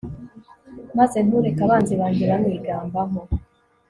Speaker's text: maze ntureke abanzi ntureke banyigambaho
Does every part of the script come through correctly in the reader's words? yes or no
no